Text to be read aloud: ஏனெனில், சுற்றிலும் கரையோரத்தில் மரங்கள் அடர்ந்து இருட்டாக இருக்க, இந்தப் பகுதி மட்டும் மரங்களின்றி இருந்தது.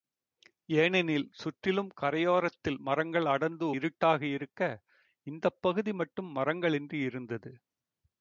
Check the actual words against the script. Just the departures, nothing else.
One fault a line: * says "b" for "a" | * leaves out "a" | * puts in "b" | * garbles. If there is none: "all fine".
all fine